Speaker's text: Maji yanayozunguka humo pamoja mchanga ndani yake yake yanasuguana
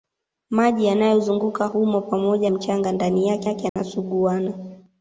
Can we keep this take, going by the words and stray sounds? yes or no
no